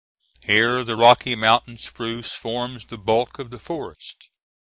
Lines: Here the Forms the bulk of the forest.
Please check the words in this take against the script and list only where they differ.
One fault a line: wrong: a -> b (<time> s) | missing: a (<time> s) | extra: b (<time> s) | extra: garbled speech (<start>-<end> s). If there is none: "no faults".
extra: Rocky Mountain spruce (0.9 s)